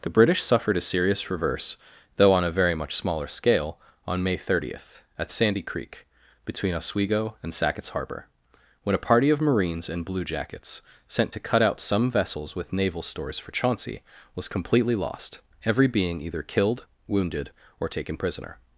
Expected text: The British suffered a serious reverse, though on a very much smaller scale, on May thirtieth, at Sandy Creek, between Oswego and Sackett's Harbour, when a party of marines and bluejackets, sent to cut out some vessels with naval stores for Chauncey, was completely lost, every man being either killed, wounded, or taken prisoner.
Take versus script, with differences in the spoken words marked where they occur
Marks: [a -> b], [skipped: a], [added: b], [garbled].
The British suffered a serious reverse, though on a very much smaller scale, on May thirtieth, at Sandy Creek, between Oswego and Sackett's Harbour, when a party of marines and bluejackets, sent to cut out some vessels with naval stores for Chauncey, was completely lost, every [skipped: man] being either killed, wounded, or taken prisoner.